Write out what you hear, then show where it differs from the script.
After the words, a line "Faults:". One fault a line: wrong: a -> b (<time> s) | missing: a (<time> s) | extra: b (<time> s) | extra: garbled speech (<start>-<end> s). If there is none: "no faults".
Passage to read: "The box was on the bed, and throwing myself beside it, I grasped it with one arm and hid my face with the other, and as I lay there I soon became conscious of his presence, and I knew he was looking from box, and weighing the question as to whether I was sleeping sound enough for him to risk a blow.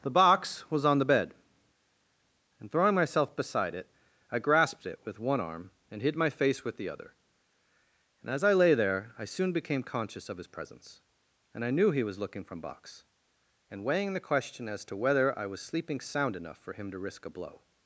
"The box was on the bed, and throwing myself beside it, I grasped it with one arm and hid my face with the other, and as I lay there I soon became conscious of his presence, and I knew he was looking from box, and weighing the question as to whether I was sleeping sound enough for him to risk a blow.
Faults:
no faults